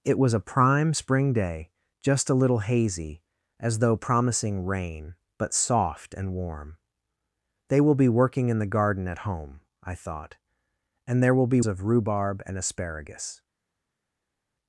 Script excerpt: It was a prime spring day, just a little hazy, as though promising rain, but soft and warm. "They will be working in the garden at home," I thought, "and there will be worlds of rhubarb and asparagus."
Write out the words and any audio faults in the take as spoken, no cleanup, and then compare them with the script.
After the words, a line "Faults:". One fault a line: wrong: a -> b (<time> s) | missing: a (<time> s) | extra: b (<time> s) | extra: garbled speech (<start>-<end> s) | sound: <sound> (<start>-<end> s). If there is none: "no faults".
It was a prime spring day, just a little hazy, as though promising rain, but soft and warm. "They will be working in the garden at home," I thought, "and there will be of rhubarb and asparagus."
Faults:
missing: worlds (11.6 s)